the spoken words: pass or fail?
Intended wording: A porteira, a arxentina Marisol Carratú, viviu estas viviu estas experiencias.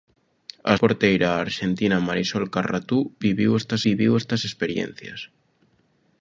pass